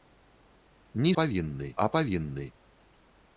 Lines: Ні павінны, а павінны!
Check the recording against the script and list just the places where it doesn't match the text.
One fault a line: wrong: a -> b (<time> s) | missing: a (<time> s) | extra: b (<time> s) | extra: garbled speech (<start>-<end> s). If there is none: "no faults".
no faults